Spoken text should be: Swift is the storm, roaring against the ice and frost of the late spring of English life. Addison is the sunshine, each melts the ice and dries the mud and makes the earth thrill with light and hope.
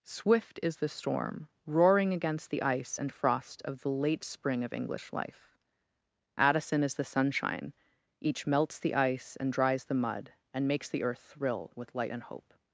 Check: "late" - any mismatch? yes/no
no